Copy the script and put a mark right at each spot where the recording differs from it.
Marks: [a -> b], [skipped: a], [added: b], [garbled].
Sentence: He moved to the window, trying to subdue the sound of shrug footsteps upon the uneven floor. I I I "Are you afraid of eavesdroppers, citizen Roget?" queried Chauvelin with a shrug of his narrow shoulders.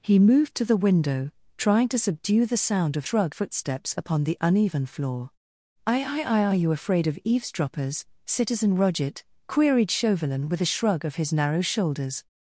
He moved to the window, trying to subdue the sound of shrug footsteps upon the uneven floor. I I I "Are you afraid of eavesdroppers, citizen Roget?" queried Chauvelin with a shrug of his narrow shoulders.